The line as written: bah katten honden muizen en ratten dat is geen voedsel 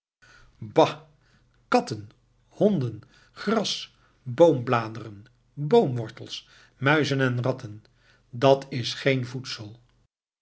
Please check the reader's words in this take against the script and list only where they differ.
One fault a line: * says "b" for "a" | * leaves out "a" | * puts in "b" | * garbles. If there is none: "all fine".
* puts in "gras boombladeren boomwortels"